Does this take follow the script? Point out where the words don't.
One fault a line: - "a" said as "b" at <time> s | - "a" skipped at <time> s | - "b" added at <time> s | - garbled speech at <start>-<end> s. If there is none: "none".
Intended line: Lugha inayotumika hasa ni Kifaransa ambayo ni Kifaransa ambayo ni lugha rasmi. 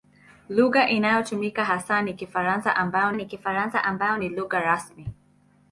none